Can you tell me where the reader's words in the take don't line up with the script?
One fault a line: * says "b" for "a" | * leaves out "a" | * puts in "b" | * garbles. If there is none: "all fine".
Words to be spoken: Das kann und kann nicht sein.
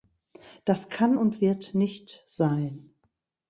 * says "wird" for "kann"